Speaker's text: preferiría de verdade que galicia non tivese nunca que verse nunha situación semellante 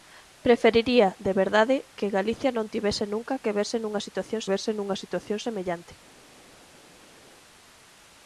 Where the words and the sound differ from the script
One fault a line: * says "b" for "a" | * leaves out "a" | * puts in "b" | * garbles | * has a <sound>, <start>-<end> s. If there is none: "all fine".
* puts in "verse nunha situación"